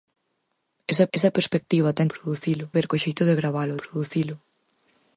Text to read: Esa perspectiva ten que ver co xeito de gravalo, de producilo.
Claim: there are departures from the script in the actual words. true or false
true